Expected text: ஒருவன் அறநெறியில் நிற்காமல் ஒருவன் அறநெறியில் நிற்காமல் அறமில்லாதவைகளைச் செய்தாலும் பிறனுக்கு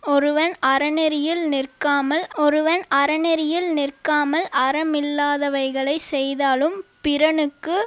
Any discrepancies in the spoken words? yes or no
no